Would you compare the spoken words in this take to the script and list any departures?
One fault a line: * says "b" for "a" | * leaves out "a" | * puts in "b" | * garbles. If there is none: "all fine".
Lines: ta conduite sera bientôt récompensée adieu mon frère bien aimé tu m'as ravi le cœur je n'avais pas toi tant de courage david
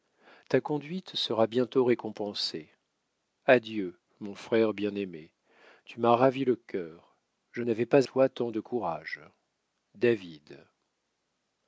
all fine